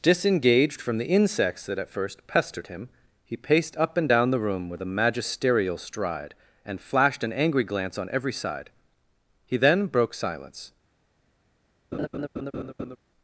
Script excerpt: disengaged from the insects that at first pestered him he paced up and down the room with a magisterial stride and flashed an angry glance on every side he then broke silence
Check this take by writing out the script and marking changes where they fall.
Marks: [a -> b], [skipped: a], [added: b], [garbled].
disengaged from the insects that at first pestered him he paced up and down the room with a magisterial stride and flashed an angry glance on every side he then broke silence